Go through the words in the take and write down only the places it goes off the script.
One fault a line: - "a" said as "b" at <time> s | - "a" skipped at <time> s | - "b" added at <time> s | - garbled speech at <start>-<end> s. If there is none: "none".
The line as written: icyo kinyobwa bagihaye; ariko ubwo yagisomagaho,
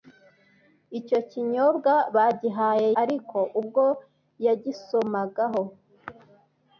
none